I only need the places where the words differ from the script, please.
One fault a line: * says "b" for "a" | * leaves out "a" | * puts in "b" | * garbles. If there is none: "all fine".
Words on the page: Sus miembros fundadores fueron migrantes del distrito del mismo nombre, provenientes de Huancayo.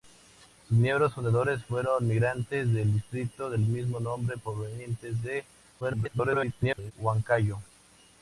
* garbles